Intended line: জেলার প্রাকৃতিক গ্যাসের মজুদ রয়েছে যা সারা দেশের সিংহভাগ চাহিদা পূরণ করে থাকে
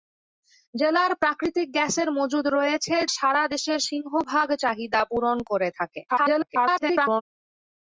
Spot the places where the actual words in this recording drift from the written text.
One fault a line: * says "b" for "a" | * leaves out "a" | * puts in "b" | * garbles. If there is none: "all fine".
* leaves out "যা"
* garbles